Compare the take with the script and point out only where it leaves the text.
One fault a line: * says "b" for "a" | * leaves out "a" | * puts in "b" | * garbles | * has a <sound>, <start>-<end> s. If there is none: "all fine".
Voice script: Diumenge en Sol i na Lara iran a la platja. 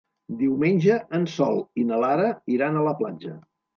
all fine